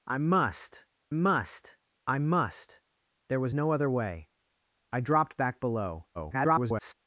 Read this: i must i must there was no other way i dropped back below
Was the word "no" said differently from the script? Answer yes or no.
no